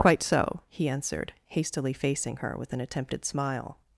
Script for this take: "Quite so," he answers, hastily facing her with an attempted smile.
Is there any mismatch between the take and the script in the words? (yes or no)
yes